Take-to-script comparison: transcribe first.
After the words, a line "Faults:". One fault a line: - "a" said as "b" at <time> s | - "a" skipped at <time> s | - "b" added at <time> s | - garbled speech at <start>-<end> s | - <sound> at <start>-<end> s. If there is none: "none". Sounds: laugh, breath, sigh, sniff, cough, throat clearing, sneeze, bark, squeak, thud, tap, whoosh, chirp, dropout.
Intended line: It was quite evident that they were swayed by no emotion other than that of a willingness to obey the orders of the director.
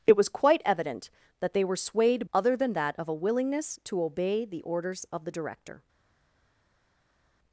It was quite evident that they were swayed other than that of a willingness to obey the orders of the director.
Faults:
- "by no emotion" skipped at 2.2 s